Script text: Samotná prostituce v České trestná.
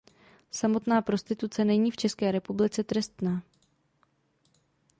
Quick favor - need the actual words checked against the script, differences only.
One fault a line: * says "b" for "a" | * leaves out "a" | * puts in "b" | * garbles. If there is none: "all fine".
* puts in "není"
* puts in "republice"